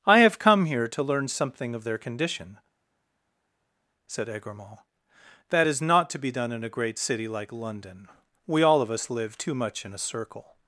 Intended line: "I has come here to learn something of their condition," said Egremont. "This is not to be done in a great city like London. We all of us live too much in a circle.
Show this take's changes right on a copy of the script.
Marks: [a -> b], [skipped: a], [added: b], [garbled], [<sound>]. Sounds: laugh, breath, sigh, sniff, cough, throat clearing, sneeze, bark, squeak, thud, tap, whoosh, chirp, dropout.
"I [has -> have] come here to learn something of their condition," said Egremont. ["This -> That] is not to be done in a great city like London. We all of us live too much in a circle.